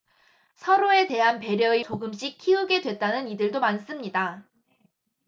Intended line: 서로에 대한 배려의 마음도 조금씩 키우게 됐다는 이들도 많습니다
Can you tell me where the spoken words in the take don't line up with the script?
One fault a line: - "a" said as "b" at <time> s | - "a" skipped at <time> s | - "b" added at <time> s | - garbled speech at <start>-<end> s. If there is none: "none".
- "마음도" skipped at 1.9 s